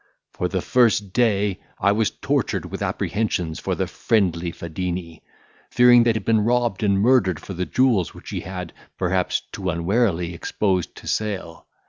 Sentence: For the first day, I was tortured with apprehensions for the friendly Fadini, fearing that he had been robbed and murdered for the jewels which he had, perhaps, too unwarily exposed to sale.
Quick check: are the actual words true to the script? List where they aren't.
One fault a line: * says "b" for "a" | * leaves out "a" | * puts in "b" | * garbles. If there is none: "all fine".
* leaves out "he"